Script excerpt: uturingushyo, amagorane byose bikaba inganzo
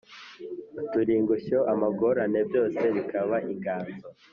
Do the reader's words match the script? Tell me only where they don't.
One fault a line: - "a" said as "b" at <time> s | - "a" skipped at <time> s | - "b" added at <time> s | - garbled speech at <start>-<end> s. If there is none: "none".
none